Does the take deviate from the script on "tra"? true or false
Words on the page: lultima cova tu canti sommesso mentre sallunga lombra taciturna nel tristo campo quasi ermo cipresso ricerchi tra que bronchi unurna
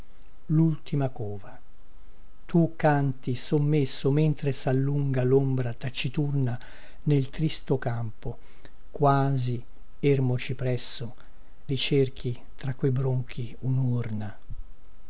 false